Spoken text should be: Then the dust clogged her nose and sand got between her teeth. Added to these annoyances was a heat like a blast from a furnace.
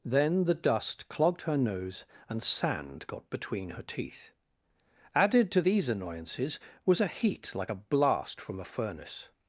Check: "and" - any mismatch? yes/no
no